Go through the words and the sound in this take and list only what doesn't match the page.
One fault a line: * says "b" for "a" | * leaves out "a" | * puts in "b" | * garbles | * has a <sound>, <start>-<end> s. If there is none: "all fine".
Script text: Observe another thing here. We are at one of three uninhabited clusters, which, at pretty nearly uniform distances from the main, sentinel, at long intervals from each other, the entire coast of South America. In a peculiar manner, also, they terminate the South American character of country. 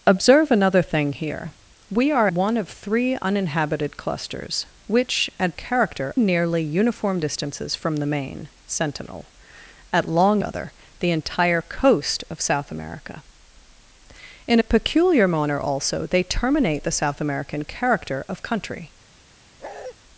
* leaves out "at"
* says "character" for "pretty"
* leaves out "intervals from each"
* has a bark, 19.6-19.9 s